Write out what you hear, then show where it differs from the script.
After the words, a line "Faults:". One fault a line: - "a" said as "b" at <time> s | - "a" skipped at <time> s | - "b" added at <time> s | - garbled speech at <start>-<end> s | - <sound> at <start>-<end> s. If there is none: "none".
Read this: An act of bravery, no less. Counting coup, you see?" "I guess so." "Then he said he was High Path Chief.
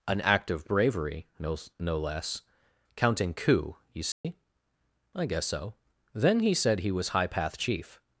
An act of bravery, no no less. Counting coup, you see?" "I guess so." "Then he said he was High Path Chief.
Faults:
- "no" added at 1.8 s
- dropout at 4.1-4.2 s